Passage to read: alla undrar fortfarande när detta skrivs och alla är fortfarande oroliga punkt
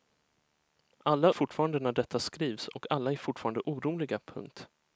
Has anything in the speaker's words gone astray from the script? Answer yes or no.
yes